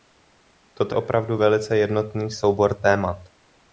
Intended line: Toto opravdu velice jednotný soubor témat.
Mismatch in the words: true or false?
false